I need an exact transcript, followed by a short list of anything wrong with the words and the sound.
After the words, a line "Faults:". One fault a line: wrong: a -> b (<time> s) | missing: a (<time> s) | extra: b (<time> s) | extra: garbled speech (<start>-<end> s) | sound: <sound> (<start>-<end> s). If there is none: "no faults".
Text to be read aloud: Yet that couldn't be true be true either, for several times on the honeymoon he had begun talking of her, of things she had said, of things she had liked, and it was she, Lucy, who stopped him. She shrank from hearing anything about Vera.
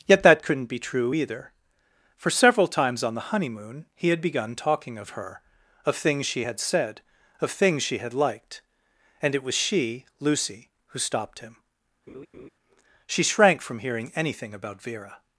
Yet that couldn't be true either, for several times on the honeymoon he had begun talking of her, of things she had said, of things she had liked, and it was she, Lucy, who stopped him. She shrank from hearing anything about Vera.
Faults:
missing: be true (1.1 s)
sound: laugh (12.1-12.5 s)